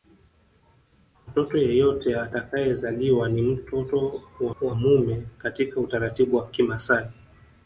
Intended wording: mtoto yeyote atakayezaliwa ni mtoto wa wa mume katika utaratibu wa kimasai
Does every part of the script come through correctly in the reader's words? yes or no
yes